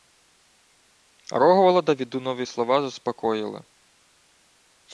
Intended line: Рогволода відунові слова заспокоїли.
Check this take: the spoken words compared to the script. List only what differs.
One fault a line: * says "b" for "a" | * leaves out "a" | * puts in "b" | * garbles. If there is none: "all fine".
all fine